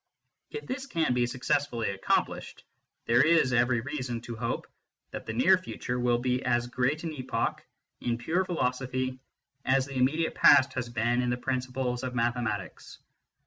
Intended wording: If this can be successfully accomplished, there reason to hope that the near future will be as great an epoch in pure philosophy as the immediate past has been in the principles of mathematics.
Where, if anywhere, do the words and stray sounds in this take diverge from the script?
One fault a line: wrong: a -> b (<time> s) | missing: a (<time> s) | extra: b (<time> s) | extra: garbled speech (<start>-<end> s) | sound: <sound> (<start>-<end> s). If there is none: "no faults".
extra: is every (3.2 s)